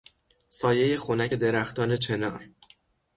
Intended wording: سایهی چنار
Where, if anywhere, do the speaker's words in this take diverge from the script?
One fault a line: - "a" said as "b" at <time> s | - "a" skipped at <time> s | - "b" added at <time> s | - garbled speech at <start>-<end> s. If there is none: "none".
- "خنک درختان" added at 1.0 s